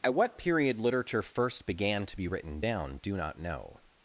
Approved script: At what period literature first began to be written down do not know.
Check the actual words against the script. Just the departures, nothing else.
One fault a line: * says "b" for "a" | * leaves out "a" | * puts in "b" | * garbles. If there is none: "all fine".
all fine